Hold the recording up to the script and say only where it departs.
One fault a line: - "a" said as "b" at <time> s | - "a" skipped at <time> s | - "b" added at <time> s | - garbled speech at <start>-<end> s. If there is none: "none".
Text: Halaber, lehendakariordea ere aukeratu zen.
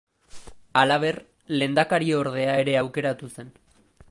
none